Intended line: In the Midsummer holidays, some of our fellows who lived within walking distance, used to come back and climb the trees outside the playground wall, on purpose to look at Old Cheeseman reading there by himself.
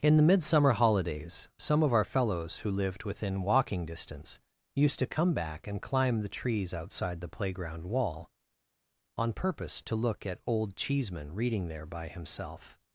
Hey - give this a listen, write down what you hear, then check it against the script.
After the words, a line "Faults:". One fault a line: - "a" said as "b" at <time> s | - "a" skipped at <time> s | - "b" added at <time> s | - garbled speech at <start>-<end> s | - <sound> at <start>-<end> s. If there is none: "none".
In the Midsummer holidays, some of our fellows who lived within walking distance, used to come back and climb the trees outside the playground wall, on purpose to look at Old Cheeseman reading there by himself.
Faults:
none